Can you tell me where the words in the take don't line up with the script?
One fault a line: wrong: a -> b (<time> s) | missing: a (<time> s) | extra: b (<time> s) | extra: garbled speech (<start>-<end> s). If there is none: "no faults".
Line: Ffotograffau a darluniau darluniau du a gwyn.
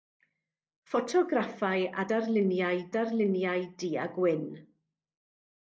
no faults